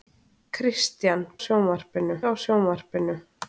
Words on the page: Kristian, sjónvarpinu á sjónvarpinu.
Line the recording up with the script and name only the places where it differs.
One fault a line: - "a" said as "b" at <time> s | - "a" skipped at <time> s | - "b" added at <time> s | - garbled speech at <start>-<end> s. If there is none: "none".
none